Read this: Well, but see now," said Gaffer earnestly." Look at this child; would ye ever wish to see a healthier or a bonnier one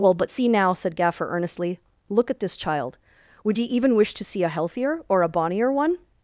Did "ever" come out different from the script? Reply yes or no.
yes